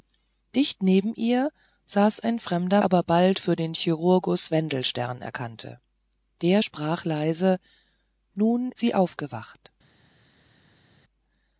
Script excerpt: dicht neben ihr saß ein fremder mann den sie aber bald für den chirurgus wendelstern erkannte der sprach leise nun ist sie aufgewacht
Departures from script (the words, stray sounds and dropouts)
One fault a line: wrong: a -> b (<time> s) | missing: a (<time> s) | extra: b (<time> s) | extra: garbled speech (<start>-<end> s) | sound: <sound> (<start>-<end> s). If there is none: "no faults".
missing: mann den sie (2.8 s)
missing: ist (8.7 s)